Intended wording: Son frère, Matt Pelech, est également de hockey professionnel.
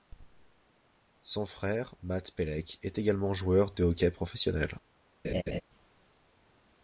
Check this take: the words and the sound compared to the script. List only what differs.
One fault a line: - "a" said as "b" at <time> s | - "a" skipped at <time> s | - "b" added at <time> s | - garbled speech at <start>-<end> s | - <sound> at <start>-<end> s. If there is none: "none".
- "joueur" added at 3.4 s
- laugh at 5.2-5.6 s